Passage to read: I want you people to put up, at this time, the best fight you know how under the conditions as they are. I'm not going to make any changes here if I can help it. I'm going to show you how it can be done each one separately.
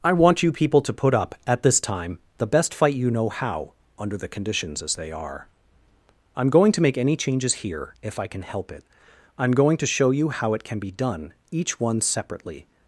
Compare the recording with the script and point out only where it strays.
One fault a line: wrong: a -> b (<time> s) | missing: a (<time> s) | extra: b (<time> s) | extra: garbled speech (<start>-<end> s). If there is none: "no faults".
missing: not (6.5 s)